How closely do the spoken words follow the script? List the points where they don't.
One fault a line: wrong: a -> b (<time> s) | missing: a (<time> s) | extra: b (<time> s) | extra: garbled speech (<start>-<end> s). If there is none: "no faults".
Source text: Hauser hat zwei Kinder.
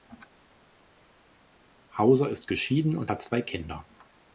extra: ist geschieden und (2.3 s)